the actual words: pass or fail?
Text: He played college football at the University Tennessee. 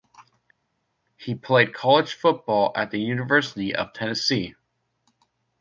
fail